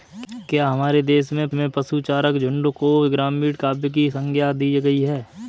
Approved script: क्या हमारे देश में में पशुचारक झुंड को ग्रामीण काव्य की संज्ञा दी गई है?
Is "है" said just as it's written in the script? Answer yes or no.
yes